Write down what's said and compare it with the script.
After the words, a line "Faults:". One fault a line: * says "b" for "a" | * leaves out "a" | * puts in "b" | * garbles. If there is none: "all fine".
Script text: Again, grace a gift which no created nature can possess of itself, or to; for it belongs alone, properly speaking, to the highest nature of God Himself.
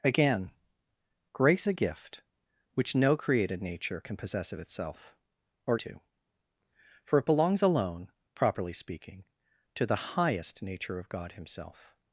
Again, grace a gift which no created nature can possess of itself, or to; for it belongs alone, properly speaking, to the highest nature of God Himself.
Faults:
all fine